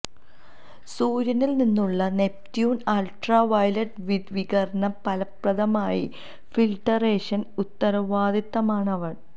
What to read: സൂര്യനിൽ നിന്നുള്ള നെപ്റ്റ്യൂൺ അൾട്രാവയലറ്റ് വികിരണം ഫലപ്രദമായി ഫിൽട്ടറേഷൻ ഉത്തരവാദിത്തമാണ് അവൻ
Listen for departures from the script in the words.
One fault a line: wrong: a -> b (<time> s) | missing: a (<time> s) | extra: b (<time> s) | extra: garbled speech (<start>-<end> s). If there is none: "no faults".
no faults